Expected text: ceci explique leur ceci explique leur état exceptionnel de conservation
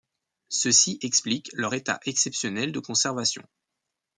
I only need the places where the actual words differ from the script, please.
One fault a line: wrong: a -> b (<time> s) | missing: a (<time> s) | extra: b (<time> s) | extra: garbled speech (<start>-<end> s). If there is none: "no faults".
missing: ceci explique leur (1.7 s)